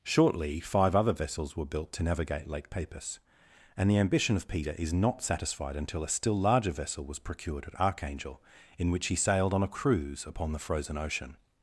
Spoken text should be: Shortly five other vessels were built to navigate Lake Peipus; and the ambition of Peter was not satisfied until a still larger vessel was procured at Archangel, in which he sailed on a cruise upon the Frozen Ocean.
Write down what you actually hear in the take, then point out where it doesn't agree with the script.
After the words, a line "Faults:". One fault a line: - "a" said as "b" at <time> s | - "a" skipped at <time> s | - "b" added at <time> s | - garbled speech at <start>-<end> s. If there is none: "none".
Shortly five other vessels were built to navigate Lake Peipus; and the ambition of Peter is not satisfied until a still larger vessel was procured at Archangel, in which he sailed on a cruise upon the Frozen Ocean.
Faults:
- "was" said as "is" at 4.7 s